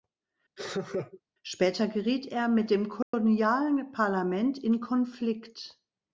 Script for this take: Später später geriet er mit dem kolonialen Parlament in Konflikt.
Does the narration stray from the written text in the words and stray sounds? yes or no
yes